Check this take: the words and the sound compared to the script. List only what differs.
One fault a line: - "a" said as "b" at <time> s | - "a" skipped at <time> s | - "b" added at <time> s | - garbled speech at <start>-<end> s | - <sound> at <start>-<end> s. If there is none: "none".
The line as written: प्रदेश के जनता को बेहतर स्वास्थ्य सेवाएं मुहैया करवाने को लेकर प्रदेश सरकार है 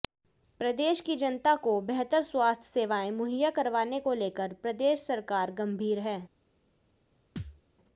- "के" said as "की" at 1.0 s
- "गंभीर" added at 5.5 s
- thud at 7.4-7.6 s